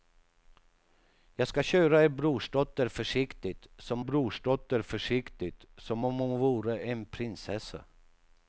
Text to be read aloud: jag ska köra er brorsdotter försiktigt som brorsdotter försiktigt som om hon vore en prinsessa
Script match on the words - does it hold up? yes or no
yes